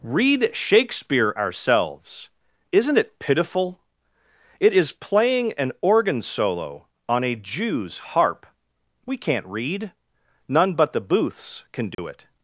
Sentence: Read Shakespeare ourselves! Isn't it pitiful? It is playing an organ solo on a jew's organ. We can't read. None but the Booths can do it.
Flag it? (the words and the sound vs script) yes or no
yes